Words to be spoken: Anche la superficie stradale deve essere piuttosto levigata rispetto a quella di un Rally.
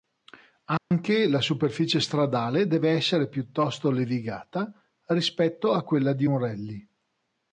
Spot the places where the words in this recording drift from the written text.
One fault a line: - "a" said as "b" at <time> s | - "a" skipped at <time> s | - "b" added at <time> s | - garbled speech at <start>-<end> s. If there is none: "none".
none